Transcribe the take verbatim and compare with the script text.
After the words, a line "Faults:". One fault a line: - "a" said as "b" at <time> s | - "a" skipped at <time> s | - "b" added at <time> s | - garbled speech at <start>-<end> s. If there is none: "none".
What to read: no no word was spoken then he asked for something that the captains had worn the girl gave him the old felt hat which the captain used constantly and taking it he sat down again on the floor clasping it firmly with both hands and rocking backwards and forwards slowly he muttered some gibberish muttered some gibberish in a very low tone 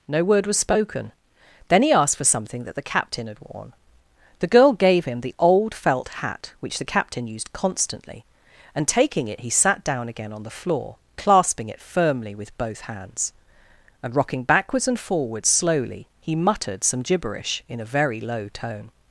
no word was spoken then he asked for something that the captain had worn the girl gave him the old felt hat which the captain used constantly and taking it he sat down again on the floor clasping it firmly with both hands and rocking backwards and forwards slowly he muttered some gibberish in a very low tone
Faults:
- "no" skipped at 0.2 s
- "captains" said as "captain" at 2.8 s
- "muttered some gibberish" skipped at 17.6 s